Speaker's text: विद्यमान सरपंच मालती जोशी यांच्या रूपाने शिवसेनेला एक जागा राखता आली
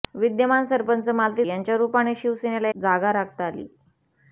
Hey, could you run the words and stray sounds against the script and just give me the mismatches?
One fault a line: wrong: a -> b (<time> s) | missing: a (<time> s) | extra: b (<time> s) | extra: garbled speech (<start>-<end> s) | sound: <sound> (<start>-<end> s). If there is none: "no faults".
missing: जोशी (1.4 s)
missing: एक (2.7 s)